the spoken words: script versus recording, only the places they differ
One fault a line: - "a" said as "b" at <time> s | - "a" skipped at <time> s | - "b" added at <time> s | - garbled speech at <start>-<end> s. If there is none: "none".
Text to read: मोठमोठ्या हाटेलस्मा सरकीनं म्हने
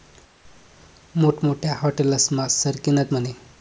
none